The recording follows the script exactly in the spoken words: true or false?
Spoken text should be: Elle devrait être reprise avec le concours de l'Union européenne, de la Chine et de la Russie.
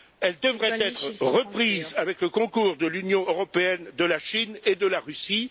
true